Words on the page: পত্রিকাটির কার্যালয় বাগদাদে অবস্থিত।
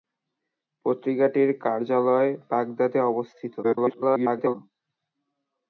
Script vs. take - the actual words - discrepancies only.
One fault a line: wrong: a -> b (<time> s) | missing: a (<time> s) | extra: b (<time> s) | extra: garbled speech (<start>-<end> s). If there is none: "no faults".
extra: garbled speech (3.6-4.6 s)